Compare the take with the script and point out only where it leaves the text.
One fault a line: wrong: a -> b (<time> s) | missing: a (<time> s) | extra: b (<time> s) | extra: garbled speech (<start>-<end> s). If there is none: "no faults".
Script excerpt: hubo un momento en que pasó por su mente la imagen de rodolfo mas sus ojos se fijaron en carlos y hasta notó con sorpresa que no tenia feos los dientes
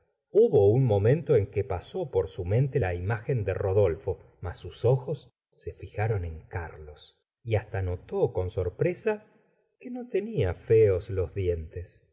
no faults